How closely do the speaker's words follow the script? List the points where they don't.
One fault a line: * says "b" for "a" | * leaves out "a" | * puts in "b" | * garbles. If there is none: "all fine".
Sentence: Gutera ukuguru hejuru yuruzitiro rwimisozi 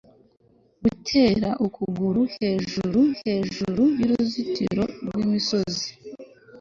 * puts in "hejuru"